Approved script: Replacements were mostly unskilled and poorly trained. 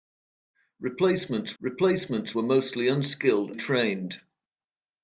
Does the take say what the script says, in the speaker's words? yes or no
no